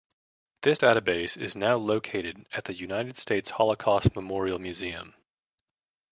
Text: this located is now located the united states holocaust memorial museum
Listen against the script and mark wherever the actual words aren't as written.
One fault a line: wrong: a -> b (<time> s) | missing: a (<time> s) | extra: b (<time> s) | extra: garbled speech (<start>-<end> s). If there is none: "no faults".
wrong: located -> database (0.8 s)
extra: at (2.5 s)